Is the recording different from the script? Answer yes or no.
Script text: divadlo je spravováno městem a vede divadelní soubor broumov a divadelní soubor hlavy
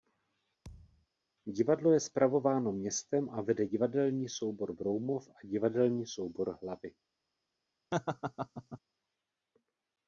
no